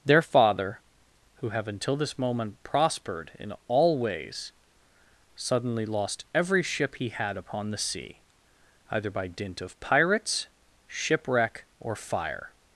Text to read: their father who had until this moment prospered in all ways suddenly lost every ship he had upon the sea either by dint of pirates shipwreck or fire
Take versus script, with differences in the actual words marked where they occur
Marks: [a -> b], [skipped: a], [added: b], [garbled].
their father who [had -> have] until this moment prospered in all ways suddenly lost every ship he had upon the sea either by dint of pirates shipwreck or fire